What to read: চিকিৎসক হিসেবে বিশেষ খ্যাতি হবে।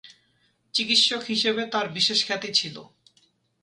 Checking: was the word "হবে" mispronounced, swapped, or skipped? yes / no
yes